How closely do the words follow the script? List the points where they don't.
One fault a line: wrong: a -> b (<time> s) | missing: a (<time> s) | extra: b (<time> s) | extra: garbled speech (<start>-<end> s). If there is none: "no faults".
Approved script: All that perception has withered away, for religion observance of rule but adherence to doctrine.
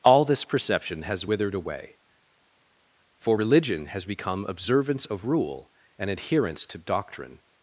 wrong: that -> this (0.2 s)
extra: has become (3.9 s)
wrong: but -> and (6.0 s)